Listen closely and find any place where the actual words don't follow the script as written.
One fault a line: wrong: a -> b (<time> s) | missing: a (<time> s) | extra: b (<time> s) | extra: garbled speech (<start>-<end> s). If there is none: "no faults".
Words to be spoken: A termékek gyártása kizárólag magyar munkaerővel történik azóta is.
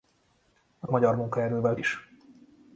missing: termékek gyártása kizárólag (0.9 s)
missing: történik azóta (1.8 s)